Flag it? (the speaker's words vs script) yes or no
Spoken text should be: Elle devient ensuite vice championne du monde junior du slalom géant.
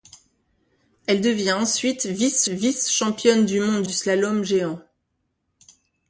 yes